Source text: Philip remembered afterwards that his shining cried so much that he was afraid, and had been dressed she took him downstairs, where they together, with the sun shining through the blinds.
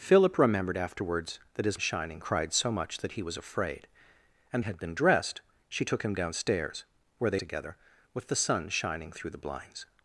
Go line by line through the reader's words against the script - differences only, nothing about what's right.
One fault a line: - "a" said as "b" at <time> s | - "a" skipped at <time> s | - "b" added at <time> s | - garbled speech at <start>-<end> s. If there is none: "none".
none